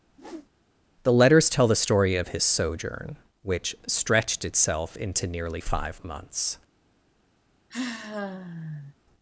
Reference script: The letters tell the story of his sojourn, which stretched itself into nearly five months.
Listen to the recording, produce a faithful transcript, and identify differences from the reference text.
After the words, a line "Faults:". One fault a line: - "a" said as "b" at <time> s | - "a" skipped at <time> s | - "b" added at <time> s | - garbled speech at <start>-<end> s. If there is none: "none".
The letters tell the story of his sojourn, which stretched itself into nearly five months.
Faults:
none